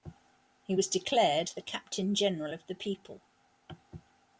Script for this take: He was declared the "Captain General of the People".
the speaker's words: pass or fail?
pass